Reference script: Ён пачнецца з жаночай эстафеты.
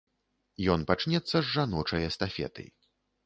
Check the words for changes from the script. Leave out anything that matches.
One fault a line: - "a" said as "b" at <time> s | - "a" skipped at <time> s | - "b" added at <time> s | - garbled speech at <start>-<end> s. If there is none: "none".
none